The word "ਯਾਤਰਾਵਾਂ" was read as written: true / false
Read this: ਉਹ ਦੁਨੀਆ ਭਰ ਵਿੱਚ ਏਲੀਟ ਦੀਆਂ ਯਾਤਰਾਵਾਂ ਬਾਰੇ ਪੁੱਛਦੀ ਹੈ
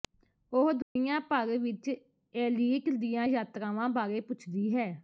true